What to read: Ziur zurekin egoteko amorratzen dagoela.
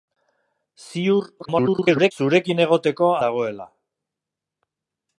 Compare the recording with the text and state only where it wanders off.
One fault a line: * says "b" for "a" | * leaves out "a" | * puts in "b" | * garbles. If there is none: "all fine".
* garbles
* leaves out "amorratzen"